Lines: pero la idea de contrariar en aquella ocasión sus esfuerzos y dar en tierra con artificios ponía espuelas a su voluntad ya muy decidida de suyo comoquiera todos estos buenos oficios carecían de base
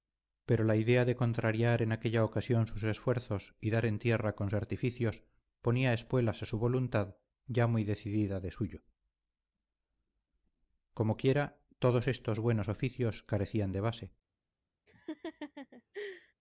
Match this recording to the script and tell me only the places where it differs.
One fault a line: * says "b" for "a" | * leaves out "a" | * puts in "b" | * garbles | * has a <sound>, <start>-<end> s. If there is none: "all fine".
* has a laugh, 14.9-16.3 s